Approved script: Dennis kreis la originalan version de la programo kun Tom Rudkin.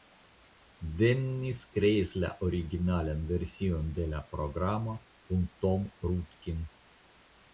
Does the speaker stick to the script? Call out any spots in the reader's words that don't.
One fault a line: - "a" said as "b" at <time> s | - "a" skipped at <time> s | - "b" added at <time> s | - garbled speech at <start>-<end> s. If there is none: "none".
none